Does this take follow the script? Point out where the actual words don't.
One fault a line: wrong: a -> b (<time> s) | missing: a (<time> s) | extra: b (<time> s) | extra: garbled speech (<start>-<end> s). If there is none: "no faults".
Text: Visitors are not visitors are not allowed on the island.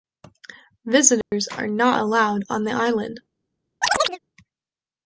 missing: visitors are not (2.0 s)